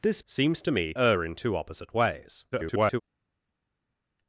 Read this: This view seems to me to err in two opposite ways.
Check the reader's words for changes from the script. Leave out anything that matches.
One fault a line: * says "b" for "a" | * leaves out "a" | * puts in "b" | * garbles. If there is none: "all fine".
* leaves out "view"
* leaves out "to"
* garbles